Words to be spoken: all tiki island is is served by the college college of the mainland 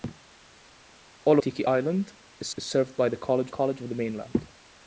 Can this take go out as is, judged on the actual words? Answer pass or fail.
pass